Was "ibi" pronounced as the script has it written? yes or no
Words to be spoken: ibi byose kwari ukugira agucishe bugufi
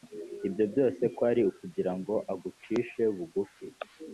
no